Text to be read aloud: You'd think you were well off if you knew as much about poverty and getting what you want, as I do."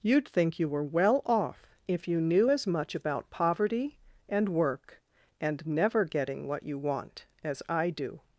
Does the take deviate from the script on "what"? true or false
false